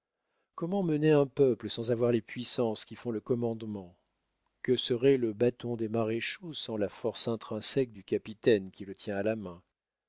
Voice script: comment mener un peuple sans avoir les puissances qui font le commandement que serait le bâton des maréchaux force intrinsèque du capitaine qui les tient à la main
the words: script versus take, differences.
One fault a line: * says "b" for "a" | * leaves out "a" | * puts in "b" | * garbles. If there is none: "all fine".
* puts in "sans la"
* says "le" for "les"